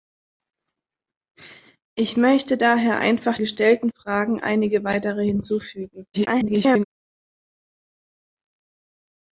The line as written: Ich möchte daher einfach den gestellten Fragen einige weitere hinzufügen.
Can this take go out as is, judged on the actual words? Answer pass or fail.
fail